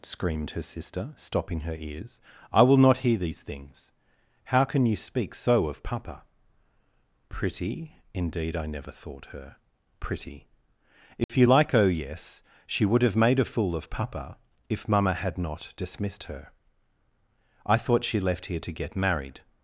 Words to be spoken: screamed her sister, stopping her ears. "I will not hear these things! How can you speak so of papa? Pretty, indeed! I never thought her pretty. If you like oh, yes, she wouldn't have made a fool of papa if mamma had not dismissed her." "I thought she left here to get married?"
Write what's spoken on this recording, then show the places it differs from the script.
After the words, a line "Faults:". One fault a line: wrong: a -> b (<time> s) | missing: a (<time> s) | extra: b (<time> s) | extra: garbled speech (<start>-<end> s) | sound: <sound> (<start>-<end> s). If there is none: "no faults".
screamed her sister, stopping her ears. "I will not hear these things! How can you speak so of papa? Pretty, indeed! I never thought her pretty. If you like oh, yes, she would have made a fool of papa if mamma had not dismissed her." "I thought she left here to get married?"
Faults:
sound: dropout (11.2-11.3 s)
wrong: wouldn't -> would (12.9 s)